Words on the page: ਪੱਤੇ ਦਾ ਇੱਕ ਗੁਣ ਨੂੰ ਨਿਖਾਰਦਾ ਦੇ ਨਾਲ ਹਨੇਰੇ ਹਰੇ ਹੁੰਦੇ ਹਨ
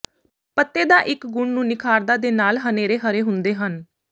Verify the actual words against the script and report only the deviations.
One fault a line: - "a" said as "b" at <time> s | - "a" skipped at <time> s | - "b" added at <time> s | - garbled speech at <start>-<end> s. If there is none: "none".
none